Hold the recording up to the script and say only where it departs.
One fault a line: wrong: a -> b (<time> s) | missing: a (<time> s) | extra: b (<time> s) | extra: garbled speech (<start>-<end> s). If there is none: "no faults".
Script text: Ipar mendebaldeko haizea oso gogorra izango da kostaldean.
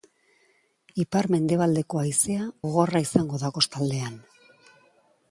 missing: oso (2.5 s)